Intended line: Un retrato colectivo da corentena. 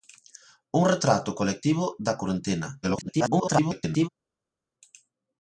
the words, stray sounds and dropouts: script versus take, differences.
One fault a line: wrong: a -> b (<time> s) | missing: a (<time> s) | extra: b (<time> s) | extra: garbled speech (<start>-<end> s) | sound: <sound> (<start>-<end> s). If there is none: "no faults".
extra: garbled speech (2.8-4.1 s)